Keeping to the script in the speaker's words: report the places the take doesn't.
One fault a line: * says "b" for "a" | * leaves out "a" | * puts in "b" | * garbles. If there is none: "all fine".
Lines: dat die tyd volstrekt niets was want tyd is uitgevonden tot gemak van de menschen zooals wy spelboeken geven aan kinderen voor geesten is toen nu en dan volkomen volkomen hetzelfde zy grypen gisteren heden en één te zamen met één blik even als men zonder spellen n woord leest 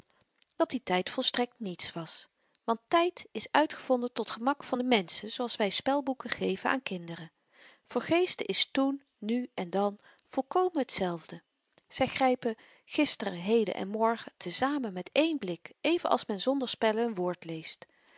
* leaves out "volkomen"
* says "morgen" for "één"